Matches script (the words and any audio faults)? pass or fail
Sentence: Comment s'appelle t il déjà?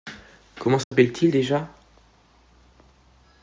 fail